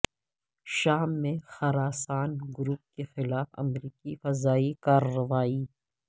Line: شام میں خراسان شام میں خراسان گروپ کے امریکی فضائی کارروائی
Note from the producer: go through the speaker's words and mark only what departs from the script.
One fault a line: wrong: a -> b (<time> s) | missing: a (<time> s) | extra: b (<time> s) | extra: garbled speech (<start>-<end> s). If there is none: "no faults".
missing: شام میں خراسان (2.3 s)
extra: خلاف (3.1 s)